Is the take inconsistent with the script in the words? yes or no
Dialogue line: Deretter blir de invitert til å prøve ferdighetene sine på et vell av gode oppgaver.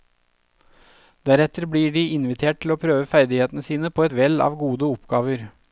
no